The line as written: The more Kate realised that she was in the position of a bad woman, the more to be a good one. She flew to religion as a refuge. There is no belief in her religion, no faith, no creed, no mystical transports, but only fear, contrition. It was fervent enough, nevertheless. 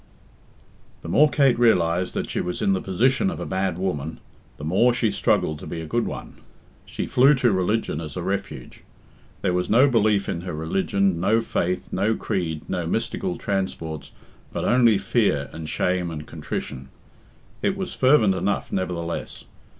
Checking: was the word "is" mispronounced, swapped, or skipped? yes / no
yes